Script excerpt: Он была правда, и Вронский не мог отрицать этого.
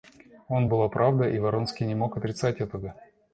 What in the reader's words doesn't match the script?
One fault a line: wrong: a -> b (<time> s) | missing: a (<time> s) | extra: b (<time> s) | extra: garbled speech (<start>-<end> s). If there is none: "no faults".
no faults